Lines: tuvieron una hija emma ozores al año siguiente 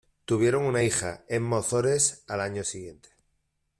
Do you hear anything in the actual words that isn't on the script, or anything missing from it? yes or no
no